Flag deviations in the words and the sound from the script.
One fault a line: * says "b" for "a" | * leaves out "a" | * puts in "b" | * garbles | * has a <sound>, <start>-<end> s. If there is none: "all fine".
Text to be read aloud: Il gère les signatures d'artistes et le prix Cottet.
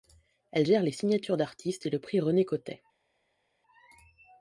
* says "Elle" for "Il"
* puts in "René"